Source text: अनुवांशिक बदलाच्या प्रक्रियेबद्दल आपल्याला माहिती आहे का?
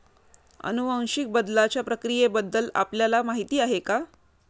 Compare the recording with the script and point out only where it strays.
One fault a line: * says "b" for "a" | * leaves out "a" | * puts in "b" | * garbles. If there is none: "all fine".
all fine